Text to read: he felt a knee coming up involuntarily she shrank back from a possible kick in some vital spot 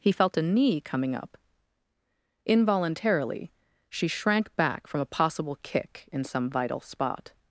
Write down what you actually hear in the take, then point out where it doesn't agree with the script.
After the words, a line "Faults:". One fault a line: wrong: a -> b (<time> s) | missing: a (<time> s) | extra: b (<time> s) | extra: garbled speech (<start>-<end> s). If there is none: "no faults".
he felt a knee coming up involuntarily she shrank back from a possible kick in some vital spot
Faults:
no faults